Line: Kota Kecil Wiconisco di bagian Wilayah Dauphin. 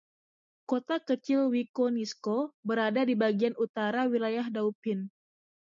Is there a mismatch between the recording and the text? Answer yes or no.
yes